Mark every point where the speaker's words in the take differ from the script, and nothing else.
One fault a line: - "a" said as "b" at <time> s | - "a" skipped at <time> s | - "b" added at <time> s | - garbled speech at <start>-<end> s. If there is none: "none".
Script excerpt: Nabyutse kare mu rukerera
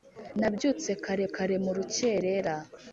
- "kare" added at 1.3 s